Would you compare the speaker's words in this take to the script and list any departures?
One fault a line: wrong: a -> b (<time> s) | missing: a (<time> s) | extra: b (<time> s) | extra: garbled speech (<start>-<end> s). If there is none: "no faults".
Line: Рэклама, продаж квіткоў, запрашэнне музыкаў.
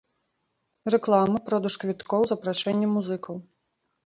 no faults